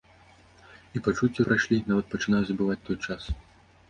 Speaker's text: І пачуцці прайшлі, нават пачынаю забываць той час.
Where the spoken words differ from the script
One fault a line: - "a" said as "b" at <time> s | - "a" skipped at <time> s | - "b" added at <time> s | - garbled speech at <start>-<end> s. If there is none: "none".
none